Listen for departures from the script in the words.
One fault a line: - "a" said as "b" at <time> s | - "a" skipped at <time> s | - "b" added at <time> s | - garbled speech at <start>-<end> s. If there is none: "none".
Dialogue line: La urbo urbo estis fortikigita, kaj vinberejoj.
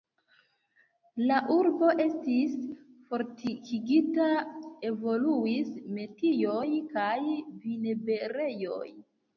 - "urbo" skipped at 1.9 s
- "evoluis metioj" added at 4.9 s